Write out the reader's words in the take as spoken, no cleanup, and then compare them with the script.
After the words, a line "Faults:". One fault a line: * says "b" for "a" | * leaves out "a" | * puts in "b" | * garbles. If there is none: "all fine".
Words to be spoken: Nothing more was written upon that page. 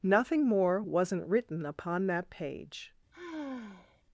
Nothing more wasn't written upon that page.
Faults:
* says "wasn't" for "was"